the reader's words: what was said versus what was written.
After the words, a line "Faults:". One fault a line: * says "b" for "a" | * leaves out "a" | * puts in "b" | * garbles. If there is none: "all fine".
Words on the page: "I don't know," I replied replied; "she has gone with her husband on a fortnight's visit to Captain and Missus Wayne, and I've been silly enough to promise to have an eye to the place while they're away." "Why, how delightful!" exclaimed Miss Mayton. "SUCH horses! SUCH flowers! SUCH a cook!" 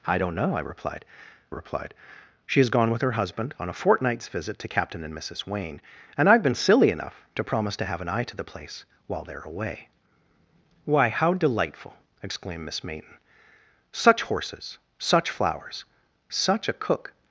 "I don't know," I replied replied; "she has gone with her husband on a fortnight's visit to Captain and Missus Wayne, and I've been silly enough to promise to have an eye to the place while they're away." "Why, how delightful!" exclaimed Miss Mayton. "SUCH horses! SUCH flowers! SUCH a cook!"
Faults:
all fine